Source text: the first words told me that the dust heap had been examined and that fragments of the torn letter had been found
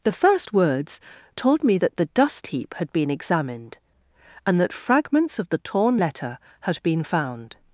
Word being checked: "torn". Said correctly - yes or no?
yes